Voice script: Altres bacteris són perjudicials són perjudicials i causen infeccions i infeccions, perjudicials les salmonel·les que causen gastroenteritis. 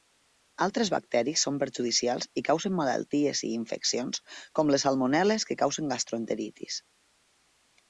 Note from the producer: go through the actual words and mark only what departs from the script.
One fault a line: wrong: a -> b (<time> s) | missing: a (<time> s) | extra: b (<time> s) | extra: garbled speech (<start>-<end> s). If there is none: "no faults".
missing: són perjudicials (2.3 s)
wrong: infeccions -> malalties (2.8 s)
wrong: perjudicials -> com (4.6 s)